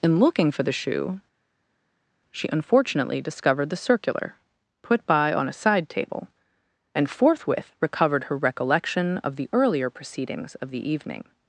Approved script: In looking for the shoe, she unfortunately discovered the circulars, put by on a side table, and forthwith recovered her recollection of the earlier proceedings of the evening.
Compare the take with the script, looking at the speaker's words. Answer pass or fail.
fail